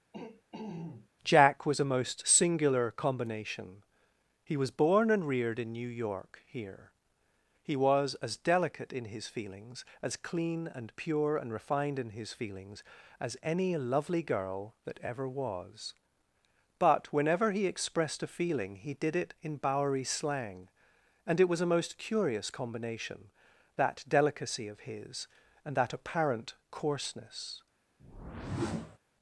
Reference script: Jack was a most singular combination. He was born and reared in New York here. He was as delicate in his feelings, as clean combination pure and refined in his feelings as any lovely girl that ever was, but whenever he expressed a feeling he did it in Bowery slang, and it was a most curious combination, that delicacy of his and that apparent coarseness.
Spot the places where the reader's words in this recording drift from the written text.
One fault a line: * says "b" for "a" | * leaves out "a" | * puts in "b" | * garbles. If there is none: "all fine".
* says "and" for "combination"